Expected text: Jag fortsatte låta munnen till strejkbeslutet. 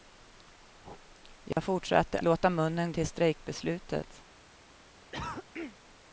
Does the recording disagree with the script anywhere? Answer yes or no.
no